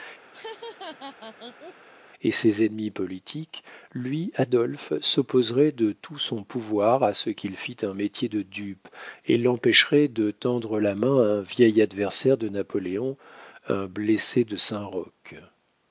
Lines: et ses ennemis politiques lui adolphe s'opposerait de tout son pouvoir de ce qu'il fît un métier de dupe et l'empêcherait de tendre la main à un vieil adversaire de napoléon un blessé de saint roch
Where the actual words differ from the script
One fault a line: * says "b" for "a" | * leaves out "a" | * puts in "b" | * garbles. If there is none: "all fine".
* says "à" for "de"